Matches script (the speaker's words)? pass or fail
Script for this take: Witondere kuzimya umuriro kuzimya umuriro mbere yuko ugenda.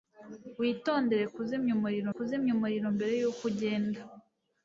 pass